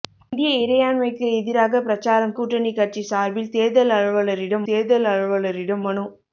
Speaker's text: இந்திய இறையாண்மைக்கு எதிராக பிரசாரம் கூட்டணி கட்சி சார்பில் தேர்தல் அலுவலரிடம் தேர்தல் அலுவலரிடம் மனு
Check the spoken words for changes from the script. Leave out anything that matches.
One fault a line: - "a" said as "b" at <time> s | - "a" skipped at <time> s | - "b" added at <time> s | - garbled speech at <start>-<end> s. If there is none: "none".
none